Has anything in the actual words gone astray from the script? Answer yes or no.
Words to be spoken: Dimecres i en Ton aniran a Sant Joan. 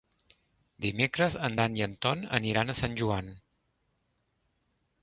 yes